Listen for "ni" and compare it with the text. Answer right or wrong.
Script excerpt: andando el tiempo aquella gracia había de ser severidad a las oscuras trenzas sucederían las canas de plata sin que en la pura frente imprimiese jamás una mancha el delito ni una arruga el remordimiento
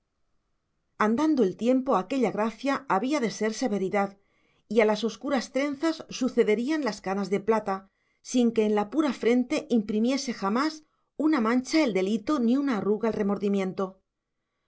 right